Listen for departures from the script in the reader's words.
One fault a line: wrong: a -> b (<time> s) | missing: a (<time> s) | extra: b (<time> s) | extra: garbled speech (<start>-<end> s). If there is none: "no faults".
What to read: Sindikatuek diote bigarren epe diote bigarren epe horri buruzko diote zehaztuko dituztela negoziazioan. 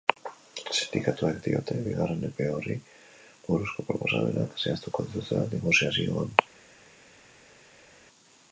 missing: diote bigarren epe (2.5 s)
wrong: diote -> proposamenak (3.9 s)